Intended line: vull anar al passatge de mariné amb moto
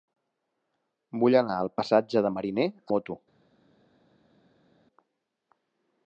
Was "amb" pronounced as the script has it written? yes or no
no